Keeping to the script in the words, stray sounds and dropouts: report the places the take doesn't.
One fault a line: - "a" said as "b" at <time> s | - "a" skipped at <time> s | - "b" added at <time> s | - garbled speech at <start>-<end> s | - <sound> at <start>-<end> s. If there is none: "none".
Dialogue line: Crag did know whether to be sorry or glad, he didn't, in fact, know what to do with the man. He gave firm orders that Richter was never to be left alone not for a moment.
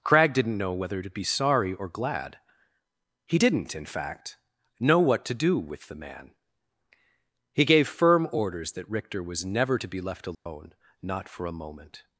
- "did" said as "didn't" at 0.3 s
- dropout at 10.3-10.5 s